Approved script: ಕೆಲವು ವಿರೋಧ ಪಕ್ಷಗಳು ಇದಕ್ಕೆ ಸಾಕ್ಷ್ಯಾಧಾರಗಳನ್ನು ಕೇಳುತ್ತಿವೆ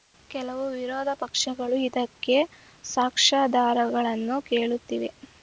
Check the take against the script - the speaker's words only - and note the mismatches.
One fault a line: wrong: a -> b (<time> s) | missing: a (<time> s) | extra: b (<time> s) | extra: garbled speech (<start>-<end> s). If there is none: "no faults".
no faults